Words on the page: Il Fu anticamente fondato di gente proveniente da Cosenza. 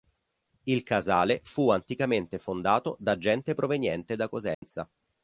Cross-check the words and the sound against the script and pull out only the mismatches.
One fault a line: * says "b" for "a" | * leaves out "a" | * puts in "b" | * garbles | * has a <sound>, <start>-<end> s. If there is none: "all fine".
* puts in "Casale"
* says "da" for "di"
* has a dropout, 4.5-4.6 s